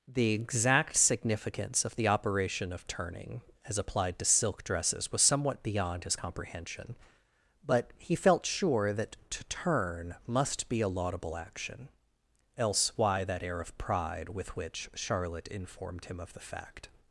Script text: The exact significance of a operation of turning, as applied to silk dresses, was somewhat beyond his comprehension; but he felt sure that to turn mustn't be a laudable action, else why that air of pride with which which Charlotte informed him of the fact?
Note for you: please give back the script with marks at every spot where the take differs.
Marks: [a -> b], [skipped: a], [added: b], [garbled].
The exact significance of [a -> the] operation of turning, as applied to silk dresses, was somewhat beyond his comprehension; but he felt sure that to turn [mustn't -> must] be a laudable action, else why that air of pride with which [skipped: which] Charlotte informed him of the fact?